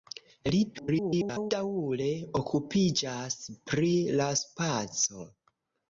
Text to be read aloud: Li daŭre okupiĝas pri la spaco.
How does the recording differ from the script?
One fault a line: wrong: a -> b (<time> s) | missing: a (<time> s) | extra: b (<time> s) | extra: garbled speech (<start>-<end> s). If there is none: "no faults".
extra: garbled speech (0.7-1.5 s)